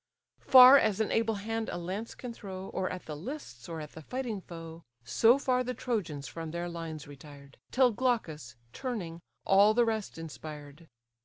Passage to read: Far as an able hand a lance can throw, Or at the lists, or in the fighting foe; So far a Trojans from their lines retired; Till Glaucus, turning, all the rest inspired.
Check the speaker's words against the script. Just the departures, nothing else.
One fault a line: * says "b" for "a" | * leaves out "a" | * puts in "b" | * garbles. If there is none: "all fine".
* says "at" for "in"
* says "the" for "a"